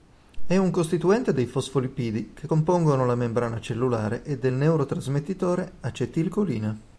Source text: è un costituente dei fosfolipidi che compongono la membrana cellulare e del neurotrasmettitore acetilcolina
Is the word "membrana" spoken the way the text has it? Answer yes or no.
yes